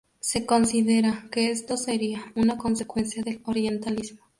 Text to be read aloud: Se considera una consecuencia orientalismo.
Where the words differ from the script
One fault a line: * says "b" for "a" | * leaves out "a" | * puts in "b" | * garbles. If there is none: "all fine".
* puts in "que esto sería"
* puts in "del"